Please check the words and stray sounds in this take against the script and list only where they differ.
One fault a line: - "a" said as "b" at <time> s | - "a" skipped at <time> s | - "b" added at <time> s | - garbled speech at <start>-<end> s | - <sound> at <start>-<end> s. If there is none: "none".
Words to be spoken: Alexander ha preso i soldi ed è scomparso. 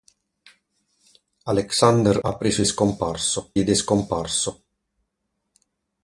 - "soldi" said as "scomparso" at 2.6 s